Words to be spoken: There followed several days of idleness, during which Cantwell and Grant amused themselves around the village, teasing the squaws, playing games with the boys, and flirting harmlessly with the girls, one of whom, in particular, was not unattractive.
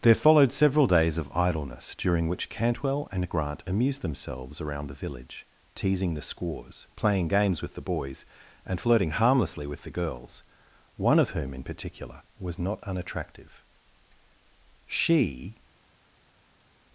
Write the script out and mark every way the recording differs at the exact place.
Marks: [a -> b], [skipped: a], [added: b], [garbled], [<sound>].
There followed several days of idleness, during which Cantwell and Grant amused themselves around the village, teasing the squaws, playing games with the boys, and flirting harmlessly with the girls, one of whom, in particular, was not unattractive. [added: She]